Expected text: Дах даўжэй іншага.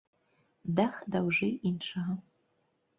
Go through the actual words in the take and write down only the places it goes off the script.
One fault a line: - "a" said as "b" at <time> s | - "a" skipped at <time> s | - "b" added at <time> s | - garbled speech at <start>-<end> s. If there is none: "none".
none